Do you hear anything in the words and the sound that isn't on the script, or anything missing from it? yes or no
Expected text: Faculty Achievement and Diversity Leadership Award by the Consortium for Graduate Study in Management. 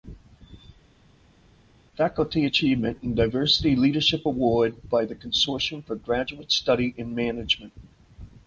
no